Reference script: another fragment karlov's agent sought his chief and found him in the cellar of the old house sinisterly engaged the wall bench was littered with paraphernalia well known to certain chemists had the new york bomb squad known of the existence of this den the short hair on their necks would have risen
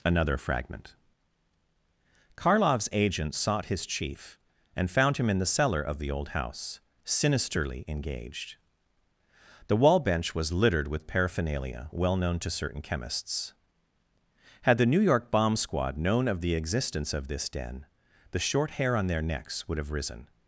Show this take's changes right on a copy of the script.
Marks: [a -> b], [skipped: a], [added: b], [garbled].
another fragment karlov's agent sought his chief and found him in the cellar of the old house sinisterly engaged the wall bench was littered with paraphernalia well known to certain chemists had the new york bomb squad known of the existence of this den the short hair on their necks would have risen